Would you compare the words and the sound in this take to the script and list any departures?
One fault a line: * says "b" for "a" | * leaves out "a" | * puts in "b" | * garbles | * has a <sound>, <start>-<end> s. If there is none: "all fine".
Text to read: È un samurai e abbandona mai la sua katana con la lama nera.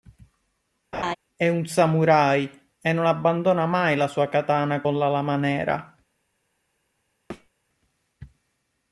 * has a laugh, 0.9-1.2 s
* puts in "non"
* has a thud, 7.3-7.5 s